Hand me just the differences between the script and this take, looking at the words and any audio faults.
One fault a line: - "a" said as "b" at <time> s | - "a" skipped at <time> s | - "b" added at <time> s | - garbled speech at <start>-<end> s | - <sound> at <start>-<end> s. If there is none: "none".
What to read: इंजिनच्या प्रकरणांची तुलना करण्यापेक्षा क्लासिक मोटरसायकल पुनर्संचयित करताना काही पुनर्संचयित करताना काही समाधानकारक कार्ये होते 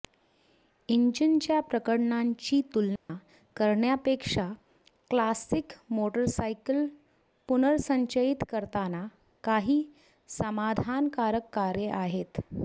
- dropout at 3.0-3.1 s
- "पुनर्संचयित करताना काही" skipped at 9.8 s
- "होते" said as "आहेत" at 11.9 s